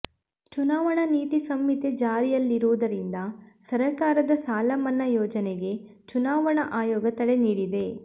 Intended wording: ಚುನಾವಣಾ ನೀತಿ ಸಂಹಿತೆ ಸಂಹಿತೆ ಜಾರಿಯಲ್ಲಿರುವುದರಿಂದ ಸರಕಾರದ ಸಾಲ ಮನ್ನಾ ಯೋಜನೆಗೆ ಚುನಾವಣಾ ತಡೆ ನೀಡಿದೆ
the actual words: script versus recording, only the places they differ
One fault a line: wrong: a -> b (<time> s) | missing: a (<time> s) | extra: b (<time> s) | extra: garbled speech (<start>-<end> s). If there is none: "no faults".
missing: ಸಂಹಿತೆ (1.9 s)
extra: ಆಯೋಗ (6.7 s)